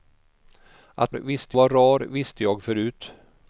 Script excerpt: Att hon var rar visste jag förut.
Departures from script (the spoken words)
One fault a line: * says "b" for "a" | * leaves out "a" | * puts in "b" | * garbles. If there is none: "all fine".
* says "visste" for "hon"